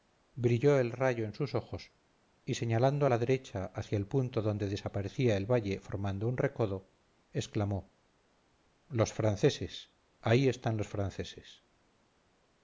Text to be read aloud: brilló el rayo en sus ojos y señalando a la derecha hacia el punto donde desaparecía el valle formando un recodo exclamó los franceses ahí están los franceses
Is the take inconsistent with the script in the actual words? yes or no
no